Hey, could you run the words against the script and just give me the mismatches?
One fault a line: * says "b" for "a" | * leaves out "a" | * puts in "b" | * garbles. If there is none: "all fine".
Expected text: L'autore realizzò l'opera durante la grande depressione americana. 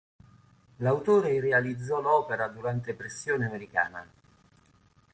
* leaves out "la grande"